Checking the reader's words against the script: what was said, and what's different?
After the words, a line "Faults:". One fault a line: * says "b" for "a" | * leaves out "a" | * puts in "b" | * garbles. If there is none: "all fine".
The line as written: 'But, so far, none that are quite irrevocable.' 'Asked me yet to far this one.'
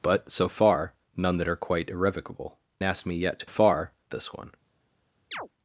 'But, so far, none that are quite irrevocable.' 'Asked me yet to far this one.'
Faults:
all fine